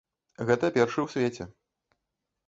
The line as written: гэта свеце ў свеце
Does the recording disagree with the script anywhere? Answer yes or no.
yes